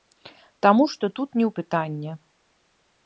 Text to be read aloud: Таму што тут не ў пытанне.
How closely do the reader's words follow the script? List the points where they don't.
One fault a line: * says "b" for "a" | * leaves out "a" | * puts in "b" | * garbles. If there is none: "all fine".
all fine